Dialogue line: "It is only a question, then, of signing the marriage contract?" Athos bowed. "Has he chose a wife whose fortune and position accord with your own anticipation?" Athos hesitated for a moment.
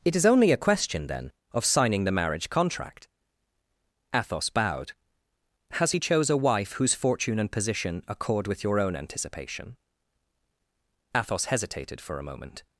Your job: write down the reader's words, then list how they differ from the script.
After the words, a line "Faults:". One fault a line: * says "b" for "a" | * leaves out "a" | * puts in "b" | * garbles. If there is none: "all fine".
"It is only a question, then, of signing the marriage contract?" Athos bowed. "Has he chose a wife whose fortune and position accord with your own anticipation?" Athos hesitated for a moment.
Faults:
all fine